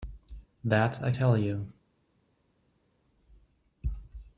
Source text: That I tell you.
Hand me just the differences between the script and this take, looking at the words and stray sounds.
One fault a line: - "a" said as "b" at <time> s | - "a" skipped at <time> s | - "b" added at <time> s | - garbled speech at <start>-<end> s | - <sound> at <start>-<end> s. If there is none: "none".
none